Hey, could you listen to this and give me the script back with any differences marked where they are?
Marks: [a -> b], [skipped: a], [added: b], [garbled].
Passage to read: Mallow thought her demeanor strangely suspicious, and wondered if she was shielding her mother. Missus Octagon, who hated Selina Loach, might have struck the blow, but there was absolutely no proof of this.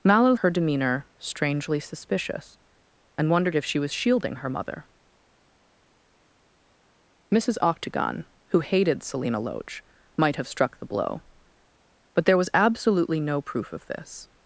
Mallow [skipped: thought] her demeanor strangely suspicious, and wondered if she was shielding her mother. Missus Octagon, who hated Selina Loach, might have struck the blow, but there was absolutely no proof of this.